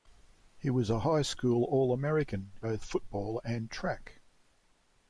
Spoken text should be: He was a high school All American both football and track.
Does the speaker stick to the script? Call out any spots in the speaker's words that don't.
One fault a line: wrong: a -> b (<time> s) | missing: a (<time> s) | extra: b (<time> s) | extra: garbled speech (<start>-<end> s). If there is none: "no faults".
no faults